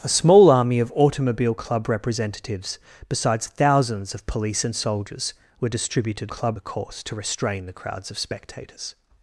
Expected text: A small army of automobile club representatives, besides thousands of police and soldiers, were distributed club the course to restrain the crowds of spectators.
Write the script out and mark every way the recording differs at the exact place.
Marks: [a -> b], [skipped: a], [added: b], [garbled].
A small army of automobile club representatives, besides thousands of police and soldiers, were distributed club the course to restrain the crowds of spectators.